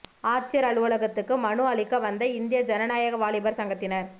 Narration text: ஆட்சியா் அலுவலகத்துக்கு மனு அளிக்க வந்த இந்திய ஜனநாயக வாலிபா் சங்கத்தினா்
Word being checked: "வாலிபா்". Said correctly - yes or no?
yes